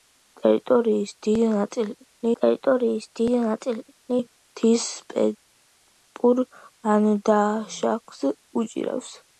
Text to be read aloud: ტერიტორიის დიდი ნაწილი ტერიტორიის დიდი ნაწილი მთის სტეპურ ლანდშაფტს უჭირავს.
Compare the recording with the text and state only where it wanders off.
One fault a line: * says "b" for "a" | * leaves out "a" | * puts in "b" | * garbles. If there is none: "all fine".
all fine